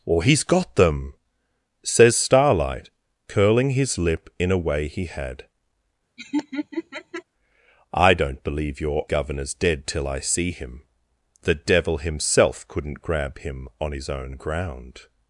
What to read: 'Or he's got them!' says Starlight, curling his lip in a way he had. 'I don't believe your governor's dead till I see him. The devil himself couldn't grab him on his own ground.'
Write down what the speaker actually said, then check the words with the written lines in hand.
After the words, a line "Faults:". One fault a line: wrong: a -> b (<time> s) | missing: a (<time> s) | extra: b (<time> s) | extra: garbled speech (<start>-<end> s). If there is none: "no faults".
'Or he's got them!' says Starlight, curling his lip in a way he had. 'I don't believe your governor's dead till I see him. The devil himself couldn't grab him on his own ground.'
Faults:
no faults